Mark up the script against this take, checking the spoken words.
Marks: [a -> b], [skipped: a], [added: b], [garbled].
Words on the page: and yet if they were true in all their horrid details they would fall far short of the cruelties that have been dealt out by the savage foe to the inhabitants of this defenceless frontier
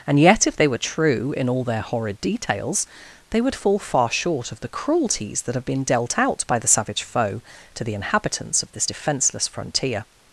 and yet if they were true in all their horrid details they would fall far short of the cruelties that have been dealt out by the savage foe to the inhabitants of this defenceless frontier